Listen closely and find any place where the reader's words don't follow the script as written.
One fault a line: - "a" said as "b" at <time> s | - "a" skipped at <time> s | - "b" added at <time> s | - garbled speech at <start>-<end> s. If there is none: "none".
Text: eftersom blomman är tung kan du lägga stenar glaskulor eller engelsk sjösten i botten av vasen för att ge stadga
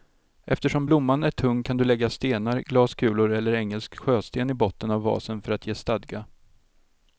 none